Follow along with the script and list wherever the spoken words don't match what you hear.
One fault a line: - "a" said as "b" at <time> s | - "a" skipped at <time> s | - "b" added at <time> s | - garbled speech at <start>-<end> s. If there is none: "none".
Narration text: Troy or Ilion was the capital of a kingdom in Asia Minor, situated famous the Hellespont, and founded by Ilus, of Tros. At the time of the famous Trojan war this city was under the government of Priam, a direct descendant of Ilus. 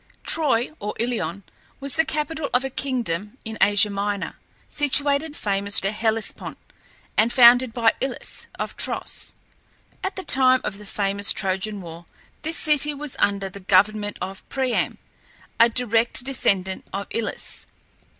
none